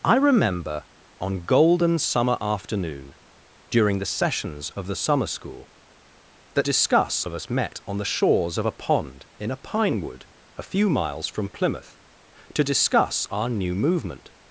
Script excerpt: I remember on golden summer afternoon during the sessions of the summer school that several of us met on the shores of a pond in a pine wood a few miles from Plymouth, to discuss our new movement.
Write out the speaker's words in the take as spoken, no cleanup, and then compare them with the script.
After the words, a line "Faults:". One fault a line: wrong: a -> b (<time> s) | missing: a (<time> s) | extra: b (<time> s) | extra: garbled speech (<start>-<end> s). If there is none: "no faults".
I remember on golden summer afternoon during the sessions of the summer school that discuss of us met on the shores of a pond in a pine wood a few miles from Plymouth, to discuss our new movement.
Faults:
wrong: several -> discuss (6.6 s)